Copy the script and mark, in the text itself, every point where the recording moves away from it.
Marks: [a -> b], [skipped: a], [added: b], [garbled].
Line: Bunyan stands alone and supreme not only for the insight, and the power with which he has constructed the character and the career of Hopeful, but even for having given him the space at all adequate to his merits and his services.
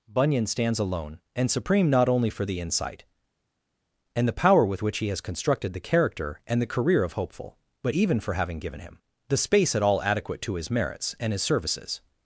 Bunyan stands alone and supreme not only for the insight, and the power with which he has constructed the character and the career of Hopeful, but even for having given him the space at all adequate to his merits and his services.